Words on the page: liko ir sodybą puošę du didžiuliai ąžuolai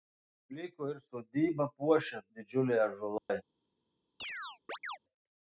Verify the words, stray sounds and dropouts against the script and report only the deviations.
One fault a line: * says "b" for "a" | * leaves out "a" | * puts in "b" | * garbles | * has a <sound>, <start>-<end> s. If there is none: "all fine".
* leaves out "du"
* has a dropout, 3.2-3.3 s
* has a chirp, 4.2-5.0 s